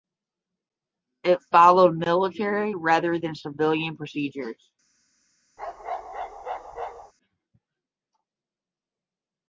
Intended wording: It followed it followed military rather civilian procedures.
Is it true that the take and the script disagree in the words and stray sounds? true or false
true